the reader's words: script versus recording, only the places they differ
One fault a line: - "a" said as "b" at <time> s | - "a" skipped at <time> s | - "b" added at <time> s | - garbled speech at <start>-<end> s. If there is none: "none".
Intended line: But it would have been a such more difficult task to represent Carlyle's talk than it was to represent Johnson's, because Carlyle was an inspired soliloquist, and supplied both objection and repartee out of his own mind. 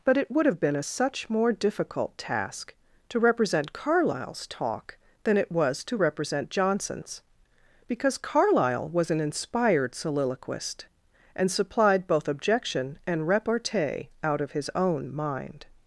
none